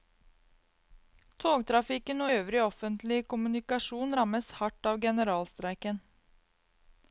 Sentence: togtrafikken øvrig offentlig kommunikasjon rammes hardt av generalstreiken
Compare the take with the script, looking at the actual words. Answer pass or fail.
pass